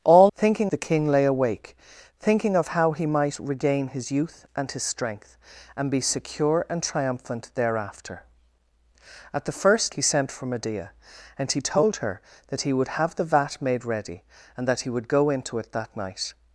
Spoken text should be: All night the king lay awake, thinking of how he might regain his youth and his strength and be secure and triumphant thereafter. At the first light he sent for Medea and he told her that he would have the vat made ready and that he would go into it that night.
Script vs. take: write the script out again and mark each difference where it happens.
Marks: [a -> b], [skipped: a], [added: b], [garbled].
All [night -> thinking] the king lay awake, thinking of how he might regain his youth and his strength and be secure and triumphant thereafter. At the first [skipped: light] he sent for Medea and he told her that he would have the vat made ready and that he would go into it that night.